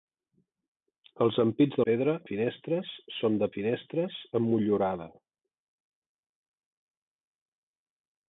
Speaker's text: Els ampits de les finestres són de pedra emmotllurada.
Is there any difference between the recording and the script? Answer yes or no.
yes